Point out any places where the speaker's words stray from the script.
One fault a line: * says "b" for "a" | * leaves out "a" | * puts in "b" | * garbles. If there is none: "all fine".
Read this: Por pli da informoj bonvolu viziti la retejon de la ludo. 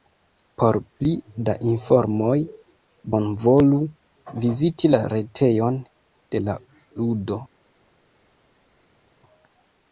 all fine